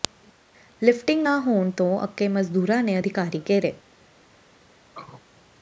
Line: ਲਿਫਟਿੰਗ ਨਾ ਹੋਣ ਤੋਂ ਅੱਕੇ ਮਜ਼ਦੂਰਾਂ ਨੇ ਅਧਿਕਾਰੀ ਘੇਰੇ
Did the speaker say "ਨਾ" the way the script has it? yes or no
yes